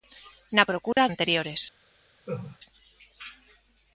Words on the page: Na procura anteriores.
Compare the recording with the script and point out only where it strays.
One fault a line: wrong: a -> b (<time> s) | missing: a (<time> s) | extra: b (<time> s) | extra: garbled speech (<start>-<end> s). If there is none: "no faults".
no faults